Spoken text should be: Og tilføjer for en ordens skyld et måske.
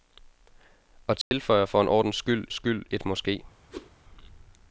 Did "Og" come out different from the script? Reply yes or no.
no